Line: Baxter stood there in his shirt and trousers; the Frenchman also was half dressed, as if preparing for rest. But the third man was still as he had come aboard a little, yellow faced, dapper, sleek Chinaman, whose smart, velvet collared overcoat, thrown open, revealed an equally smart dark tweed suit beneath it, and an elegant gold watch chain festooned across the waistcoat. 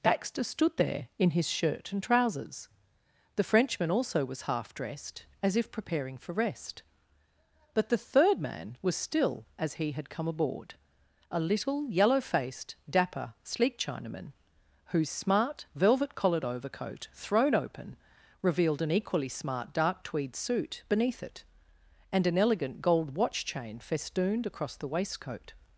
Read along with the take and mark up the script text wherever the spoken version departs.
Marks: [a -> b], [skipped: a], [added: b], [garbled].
Baxter stood there in his shirt and trousers; the Frenchman also was half dressed, as if preparing for rest. But the third man was still as he had come aboard a little, yellow faced, dapper, sleek Chinaman, whose smart, velvet collared overcoat, thrown open, revealed an equally smart dark tweed suit beneath it, and an elegant gold watch chain festooned across the waistcoat.